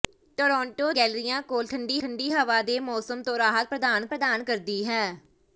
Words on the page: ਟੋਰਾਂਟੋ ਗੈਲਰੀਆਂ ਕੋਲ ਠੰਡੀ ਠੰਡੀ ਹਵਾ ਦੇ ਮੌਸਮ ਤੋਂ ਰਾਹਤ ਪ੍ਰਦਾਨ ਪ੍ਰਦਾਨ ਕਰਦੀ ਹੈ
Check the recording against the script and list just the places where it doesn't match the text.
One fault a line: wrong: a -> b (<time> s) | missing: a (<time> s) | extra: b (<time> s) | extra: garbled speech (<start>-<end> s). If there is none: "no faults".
no faults